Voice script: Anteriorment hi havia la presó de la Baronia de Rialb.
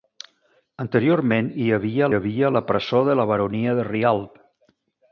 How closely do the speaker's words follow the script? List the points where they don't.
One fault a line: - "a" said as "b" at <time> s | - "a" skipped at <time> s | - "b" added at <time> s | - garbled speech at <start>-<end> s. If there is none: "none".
- "havia" added at 2.2 s